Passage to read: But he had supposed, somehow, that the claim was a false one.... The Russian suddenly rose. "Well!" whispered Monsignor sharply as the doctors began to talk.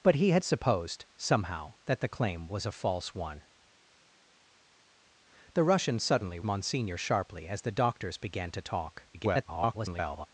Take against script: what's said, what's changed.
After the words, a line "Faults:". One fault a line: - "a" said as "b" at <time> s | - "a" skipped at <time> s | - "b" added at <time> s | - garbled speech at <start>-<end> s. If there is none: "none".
But he had supposed, somehow, that the claim was a false one.... The Russian suddenly Monsignor sharply as the doctors began to talk. [garbled]
Faults:
- "rose Well whispered" skipped at 6.4 s
- garbled speech at 9.1-10.3 s